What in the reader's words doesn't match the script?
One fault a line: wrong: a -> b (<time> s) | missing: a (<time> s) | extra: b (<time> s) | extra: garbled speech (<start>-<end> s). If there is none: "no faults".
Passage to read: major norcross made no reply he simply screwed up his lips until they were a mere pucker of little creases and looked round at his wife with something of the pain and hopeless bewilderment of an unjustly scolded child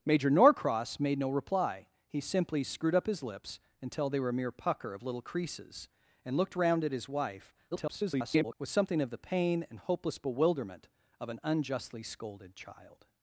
extra: garbled speech (7.7-8.5 s)